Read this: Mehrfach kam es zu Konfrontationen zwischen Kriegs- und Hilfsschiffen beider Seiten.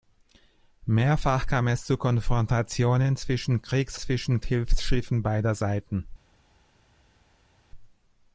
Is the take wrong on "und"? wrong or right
wrong